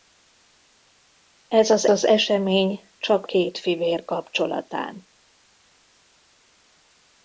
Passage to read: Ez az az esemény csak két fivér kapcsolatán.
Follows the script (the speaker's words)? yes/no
yes